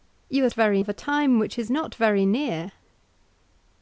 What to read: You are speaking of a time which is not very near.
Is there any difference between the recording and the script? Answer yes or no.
yes